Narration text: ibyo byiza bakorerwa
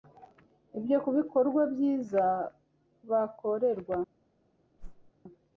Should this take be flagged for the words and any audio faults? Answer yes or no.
yes